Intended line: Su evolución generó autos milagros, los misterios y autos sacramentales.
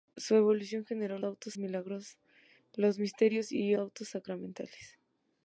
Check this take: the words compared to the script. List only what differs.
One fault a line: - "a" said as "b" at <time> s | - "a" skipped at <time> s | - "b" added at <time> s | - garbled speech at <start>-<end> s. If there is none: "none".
none